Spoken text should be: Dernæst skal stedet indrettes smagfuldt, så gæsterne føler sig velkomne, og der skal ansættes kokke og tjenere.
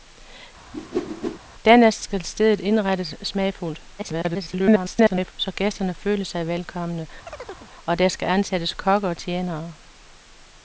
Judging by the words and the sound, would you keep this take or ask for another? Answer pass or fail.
fail